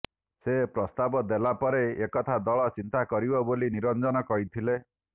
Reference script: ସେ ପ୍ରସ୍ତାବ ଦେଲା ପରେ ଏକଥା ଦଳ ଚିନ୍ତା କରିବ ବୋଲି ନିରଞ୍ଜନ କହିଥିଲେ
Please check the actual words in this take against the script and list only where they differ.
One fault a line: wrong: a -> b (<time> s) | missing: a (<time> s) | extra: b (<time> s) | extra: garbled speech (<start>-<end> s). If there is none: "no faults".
no faults